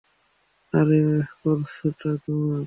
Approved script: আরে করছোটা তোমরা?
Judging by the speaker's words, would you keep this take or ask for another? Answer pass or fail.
pass